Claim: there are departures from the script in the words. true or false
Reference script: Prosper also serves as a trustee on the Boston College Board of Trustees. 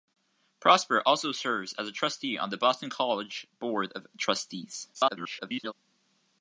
true